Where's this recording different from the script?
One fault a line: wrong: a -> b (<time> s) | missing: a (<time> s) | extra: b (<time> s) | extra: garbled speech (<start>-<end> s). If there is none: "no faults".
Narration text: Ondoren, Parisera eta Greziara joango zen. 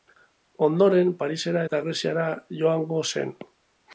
no faults